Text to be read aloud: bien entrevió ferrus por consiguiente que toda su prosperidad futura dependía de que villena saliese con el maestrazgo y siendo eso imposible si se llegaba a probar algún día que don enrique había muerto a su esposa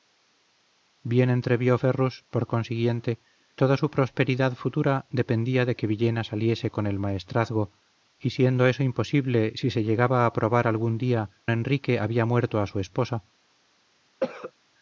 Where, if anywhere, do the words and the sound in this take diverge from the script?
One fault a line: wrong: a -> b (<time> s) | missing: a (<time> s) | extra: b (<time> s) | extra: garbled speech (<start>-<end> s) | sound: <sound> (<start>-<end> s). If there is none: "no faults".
missing: que (3.2 s)
missing: que don (11.3 s)
sound: cough (14.2-14.5 s)